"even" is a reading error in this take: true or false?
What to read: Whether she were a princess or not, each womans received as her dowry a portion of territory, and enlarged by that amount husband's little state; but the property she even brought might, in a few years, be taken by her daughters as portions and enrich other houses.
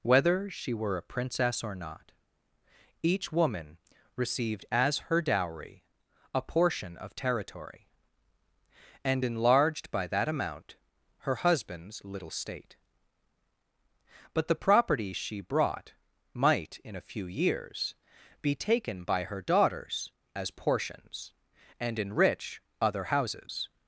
true